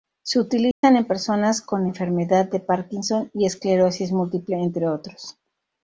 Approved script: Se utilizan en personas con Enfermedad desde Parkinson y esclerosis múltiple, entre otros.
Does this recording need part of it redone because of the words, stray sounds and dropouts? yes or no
yes